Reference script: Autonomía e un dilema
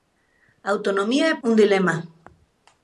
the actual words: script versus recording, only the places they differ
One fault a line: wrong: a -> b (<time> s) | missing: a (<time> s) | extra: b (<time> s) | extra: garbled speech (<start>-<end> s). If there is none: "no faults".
no faults